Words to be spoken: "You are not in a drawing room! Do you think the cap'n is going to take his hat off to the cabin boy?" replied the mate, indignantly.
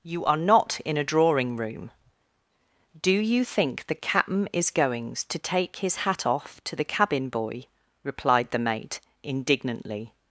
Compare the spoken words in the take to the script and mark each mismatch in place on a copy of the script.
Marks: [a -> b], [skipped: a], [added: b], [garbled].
"You are not in a drawing room! Do you think the cap'n is [going -> goings] to take his hat off to the cabin boy?" replied the mate, indignantly.